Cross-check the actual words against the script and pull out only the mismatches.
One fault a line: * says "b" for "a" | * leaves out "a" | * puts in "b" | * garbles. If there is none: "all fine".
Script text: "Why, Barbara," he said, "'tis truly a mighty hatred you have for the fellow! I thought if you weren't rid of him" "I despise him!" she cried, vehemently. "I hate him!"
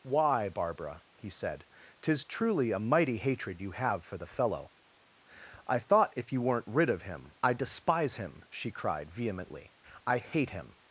all fine